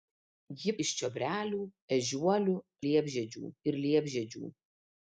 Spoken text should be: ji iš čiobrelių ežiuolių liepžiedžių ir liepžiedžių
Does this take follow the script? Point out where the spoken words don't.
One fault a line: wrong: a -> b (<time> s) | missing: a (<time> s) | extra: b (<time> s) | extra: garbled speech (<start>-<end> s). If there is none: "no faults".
no faults